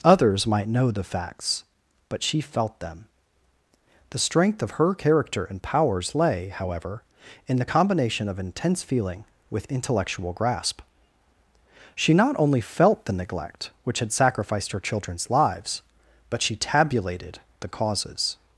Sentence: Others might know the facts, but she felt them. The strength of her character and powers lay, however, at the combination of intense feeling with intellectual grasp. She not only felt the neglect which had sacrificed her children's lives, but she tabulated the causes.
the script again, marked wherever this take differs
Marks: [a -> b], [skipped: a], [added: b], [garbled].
Others might know the facts, but she felt them. The strength of her character and powers lay, however, [at -> in] the combination of intense feeling with intellectual grasp. She not only felt the neglect which had sacrificed her children's lives, but she tabulated the causes.